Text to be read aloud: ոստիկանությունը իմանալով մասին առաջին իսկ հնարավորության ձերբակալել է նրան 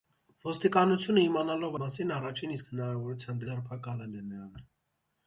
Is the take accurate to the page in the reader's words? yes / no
yes